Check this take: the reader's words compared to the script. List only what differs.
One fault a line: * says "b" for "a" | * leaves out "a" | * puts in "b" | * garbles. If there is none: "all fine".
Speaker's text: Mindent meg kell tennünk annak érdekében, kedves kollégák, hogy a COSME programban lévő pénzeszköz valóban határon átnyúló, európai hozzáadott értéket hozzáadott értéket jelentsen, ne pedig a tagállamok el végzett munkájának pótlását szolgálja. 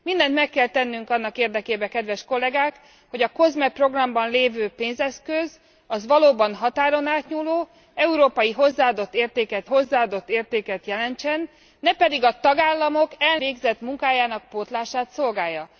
all fine